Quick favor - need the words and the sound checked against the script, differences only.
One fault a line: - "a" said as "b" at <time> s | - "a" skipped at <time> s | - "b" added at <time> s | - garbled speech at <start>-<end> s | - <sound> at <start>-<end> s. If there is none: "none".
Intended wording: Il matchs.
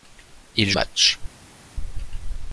none